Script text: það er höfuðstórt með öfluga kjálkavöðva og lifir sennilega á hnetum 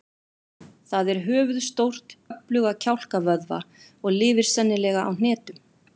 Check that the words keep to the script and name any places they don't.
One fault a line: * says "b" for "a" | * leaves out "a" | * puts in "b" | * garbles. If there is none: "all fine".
* leaves out "með"